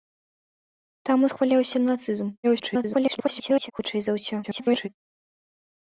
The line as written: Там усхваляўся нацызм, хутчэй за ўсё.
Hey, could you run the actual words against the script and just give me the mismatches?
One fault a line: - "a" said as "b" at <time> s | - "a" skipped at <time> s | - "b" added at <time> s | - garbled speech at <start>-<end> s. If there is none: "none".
- garbled speech at 2.4-3.7 s
- garbled speech at 4.4-4.9 s